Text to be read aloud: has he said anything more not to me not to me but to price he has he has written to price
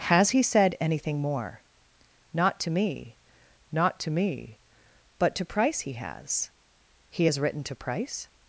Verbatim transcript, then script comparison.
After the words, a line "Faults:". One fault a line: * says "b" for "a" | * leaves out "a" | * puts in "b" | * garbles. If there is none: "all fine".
has he said anything more not to me not to me but to price he has he has written to price
Faults:
all fine